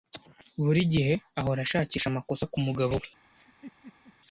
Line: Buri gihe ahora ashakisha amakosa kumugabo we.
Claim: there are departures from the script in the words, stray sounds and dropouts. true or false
true